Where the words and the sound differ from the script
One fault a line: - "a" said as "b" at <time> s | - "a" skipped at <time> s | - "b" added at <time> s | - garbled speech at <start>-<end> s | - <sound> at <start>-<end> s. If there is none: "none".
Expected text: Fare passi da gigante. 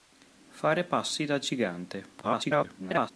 - garbled speech at 2.2-3.1 s